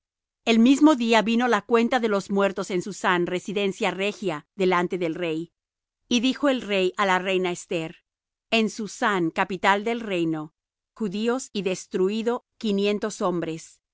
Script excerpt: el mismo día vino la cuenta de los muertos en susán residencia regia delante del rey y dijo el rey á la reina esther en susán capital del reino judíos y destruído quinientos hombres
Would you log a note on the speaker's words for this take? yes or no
no